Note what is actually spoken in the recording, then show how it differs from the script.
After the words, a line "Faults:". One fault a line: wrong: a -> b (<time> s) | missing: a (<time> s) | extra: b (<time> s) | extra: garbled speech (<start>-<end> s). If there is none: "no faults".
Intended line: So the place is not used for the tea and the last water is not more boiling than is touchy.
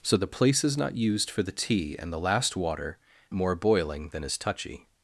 So the place is not used for the tea and the last water more boiling than is touchy.
Faults:
missing: is not (3.0 s)